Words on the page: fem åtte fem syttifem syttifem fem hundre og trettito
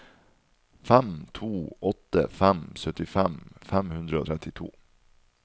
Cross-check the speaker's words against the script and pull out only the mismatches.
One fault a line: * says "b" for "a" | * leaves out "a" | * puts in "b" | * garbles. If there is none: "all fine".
* puts in "to"
* leaves out "syttifem"